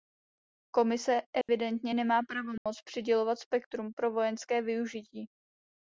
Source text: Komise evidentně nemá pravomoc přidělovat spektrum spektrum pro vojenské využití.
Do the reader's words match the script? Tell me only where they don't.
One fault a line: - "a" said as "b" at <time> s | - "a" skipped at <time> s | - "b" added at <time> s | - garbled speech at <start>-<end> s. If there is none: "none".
- "spektrum" skipped at 3.9 s